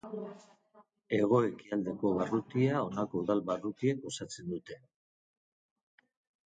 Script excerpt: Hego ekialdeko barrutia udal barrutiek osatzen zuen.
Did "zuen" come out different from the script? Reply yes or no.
yes